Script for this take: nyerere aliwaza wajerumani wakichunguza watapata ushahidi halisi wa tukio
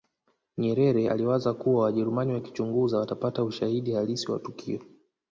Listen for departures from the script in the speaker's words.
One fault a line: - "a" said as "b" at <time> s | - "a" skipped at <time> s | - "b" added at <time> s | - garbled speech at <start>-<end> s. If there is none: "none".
- "kuwa" added at 1.5 s